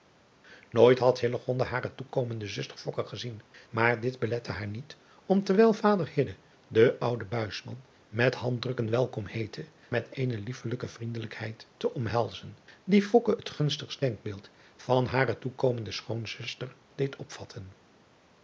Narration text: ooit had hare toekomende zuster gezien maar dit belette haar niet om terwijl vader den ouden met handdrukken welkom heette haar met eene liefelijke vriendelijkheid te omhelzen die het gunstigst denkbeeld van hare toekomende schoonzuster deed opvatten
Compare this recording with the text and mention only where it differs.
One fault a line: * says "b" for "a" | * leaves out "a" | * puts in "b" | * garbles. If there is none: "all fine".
* leaves out "haar"